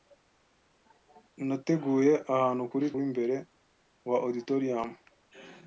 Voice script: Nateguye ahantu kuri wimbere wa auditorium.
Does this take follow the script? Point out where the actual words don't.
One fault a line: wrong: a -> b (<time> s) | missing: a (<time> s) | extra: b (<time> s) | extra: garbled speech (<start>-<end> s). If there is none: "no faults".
no faults